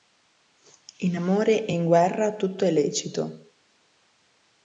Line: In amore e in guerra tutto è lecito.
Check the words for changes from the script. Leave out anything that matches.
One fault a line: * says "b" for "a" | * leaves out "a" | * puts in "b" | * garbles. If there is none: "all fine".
all fine